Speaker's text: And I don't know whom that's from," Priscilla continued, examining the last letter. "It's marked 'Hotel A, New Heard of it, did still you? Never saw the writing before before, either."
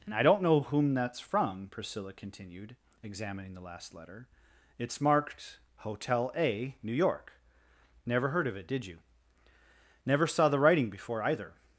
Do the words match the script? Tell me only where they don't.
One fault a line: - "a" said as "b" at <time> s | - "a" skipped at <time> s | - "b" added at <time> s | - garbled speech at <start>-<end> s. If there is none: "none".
- "York Never" added at 6.9 s
- "still" skipped at 8.9 s
- "before" skipped at 11.2 s